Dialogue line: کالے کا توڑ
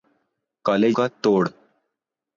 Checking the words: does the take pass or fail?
pass